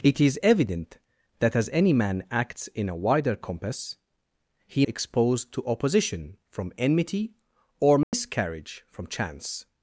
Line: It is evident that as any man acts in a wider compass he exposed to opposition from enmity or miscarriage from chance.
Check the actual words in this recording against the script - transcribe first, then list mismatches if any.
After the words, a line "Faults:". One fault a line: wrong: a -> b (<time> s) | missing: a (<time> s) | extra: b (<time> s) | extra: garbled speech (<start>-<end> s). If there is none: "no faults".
It is evident that as any man acts in a wider compass he exposed to opposition from enmity or miscarriage from chance.
Faults:
no faults